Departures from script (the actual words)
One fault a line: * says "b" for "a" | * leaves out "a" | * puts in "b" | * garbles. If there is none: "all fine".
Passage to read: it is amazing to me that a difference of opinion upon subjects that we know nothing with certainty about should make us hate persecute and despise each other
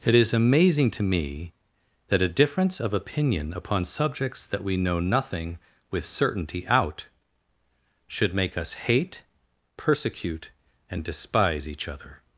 * says "out" for "about"